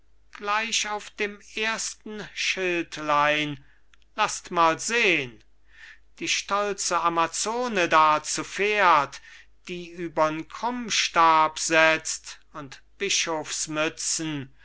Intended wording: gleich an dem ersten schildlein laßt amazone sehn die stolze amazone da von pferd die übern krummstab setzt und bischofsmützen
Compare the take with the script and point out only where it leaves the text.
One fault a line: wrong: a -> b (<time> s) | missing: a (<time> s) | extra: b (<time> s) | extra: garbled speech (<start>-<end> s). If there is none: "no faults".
wrong: an -> auf (0.9 s)
wrong: amazone -> mal (4.5 s)
wrong: von -> zu (8.2 s)